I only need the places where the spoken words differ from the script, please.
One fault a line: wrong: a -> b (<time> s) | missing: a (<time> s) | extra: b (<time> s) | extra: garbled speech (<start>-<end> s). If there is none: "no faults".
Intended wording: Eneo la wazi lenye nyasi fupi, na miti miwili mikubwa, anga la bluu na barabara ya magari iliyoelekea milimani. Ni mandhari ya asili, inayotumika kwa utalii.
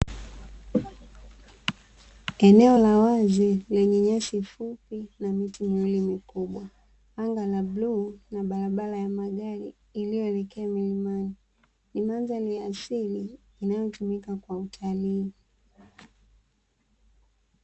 no faults